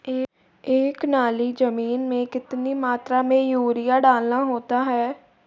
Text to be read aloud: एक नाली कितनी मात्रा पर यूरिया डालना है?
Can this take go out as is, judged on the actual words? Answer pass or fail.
fail